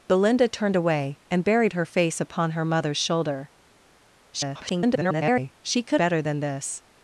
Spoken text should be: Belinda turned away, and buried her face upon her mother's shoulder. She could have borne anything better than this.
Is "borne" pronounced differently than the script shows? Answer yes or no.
yes